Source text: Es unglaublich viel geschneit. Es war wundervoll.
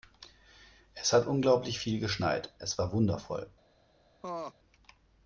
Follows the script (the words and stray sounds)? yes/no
no